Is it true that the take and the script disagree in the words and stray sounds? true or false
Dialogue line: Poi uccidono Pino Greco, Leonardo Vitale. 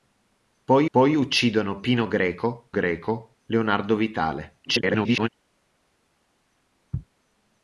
true